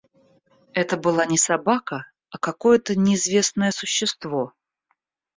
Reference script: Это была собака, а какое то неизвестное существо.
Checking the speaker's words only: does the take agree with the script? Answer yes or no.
no